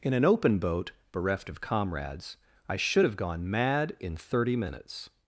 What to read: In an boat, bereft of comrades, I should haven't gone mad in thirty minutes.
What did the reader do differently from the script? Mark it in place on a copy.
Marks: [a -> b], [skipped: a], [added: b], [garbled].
In an [added: open] boat, bereft of comrades, I should [haven't -> have] gone mad in thirty minutes.